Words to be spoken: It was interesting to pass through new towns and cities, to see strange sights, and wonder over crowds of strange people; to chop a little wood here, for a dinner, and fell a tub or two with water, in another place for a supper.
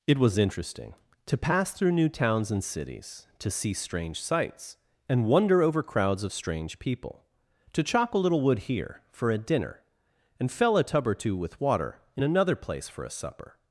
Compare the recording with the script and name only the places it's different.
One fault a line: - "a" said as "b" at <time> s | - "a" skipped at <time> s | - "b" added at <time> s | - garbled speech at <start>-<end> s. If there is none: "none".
none